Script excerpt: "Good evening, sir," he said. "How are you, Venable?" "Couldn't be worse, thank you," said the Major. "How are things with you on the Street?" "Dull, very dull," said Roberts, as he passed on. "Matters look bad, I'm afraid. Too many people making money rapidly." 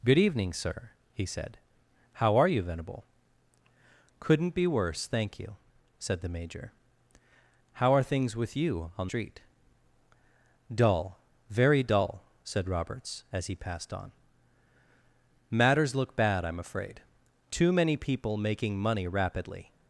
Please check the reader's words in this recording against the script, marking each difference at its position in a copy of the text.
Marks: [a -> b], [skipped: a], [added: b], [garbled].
"Good evening, sir," he said. "How are you, Venable?" "Couldn't be worse, thank you," said the Major. "How are things with you on [skipped: the] Street?" "Dull, very dull," said Roberts, as he passed on. "Matters look bad, I'm afraid. Too many people making money rapidly."